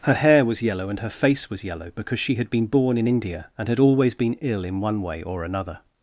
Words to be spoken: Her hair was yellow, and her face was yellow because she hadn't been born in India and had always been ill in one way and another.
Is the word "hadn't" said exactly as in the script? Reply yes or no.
no